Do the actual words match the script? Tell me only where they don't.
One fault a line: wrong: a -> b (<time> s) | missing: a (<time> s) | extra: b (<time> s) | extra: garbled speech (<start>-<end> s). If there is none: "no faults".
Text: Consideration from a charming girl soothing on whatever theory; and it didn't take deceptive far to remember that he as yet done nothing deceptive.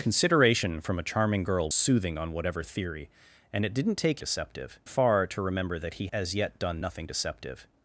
no faults